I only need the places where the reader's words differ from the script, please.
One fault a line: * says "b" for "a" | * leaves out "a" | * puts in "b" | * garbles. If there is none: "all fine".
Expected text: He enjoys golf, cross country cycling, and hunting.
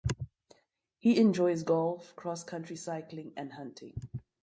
all fine